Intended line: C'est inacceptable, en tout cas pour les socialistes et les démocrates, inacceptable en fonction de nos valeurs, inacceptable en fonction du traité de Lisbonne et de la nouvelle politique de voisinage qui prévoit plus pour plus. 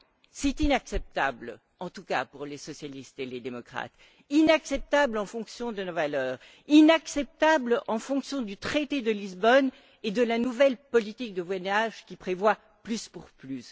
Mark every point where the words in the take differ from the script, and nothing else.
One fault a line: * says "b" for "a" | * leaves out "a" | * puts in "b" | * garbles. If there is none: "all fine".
all fine